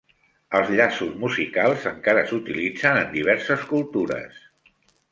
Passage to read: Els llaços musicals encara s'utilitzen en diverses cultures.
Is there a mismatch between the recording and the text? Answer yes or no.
no